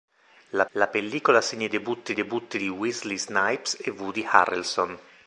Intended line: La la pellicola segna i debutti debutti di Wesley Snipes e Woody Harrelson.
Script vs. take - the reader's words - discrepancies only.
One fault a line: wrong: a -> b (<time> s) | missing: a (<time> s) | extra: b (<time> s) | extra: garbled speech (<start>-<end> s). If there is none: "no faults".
no faults